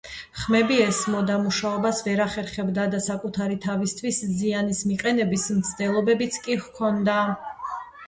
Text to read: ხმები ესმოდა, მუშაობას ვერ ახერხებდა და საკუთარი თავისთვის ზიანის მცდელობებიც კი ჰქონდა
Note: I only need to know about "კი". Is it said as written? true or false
true